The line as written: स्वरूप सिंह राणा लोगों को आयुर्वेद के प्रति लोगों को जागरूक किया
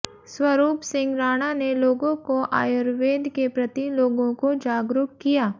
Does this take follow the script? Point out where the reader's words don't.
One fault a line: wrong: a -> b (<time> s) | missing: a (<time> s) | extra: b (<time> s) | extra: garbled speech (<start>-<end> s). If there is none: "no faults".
extra: ने (1.5 s)